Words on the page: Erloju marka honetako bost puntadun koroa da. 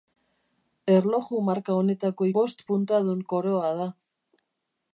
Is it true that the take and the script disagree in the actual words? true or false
false